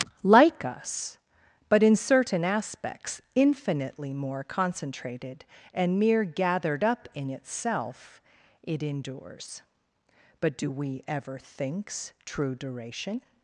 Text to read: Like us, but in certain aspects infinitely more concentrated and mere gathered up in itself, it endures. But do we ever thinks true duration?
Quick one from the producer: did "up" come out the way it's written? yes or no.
yes